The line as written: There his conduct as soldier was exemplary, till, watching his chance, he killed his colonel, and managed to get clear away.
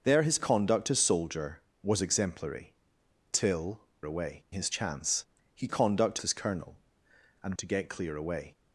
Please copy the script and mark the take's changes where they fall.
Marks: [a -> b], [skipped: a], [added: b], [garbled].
There his conduct as soldier was exemplary, till, [watching -> away] his chance, he [killed -> conduct] his colonel, and [skipped: managed] to get clear away.